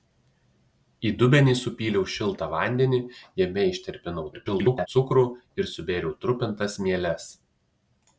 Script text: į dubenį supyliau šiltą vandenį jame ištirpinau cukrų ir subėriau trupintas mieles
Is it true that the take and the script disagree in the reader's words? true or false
true